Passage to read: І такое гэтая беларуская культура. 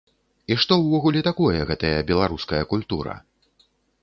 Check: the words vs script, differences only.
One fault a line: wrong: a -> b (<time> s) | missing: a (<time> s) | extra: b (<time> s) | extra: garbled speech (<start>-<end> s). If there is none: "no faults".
extra: што ўвогуле (0.6 s)